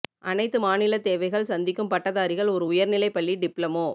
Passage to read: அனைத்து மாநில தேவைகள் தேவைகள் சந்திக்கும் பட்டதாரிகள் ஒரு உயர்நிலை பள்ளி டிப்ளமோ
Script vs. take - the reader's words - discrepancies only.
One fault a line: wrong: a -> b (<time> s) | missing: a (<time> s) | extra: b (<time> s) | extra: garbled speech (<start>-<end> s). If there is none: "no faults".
missing: தேவைகள் (1.5 s)